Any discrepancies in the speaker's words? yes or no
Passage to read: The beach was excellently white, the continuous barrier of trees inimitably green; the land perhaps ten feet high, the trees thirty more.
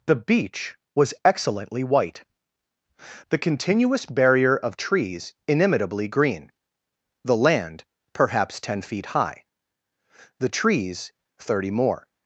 no